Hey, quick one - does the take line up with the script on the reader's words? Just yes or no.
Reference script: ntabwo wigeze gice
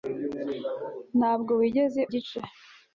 yes